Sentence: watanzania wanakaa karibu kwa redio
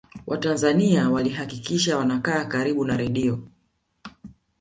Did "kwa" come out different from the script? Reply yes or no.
yes